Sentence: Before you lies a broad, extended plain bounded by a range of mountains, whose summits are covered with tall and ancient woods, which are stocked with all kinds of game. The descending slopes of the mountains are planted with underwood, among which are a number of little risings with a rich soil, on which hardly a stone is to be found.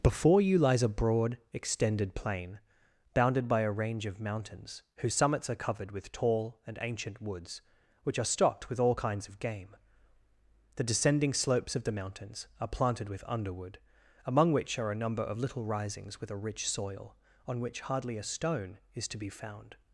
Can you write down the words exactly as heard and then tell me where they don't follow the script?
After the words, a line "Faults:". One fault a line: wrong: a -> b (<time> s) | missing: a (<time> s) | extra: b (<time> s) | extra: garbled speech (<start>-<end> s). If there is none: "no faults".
Before you lies a broad, extended plain bounded by a range of mountains, whose summits are covered with tall and ancient woods, which are stocked with all kinds of game. The descending slopes of the mountains are planted with underwood, among which are a number of little risings with a rich soil, on which hardly a stone is to be found.
Faults:
no faults